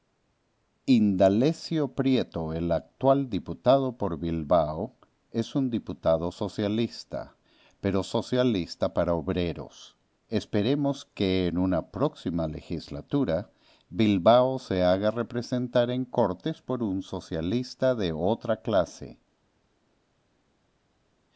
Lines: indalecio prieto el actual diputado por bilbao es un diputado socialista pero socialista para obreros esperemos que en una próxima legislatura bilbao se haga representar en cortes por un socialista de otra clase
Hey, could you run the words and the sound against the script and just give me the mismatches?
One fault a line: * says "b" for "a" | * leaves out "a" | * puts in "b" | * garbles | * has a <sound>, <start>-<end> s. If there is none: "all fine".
all fine